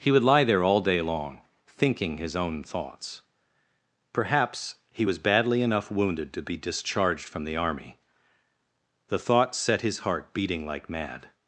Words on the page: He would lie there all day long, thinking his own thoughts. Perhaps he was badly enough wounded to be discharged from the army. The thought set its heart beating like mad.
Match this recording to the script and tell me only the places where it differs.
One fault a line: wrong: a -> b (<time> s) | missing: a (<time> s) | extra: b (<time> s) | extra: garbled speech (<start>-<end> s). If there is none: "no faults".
wrong: its -> his (9.8 s)